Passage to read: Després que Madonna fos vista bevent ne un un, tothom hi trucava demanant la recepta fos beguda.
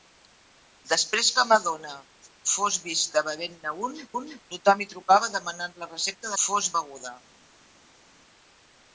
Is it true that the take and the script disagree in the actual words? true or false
false